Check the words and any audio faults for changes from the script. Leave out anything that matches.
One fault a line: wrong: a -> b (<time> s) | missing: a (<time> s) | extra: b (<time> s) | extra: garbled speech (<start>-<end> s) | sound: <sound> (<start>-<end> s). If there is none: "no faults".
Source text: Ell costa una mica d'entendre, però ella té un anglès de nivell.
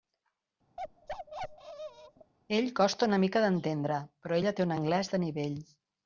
sound: bark (0.8-2.3 s)